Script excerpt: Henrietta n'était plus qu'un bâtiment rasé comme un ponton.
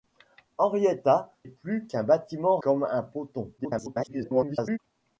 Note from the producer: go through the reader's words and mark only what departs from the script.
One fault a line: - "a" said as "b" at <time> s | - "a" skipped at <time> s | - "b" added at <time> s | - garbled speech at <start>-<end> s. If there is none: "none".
- "n'était" skipped at 1.3 s
- "rasé" skipped at 2.6 s
- garbled speech at 3.6-4.8 s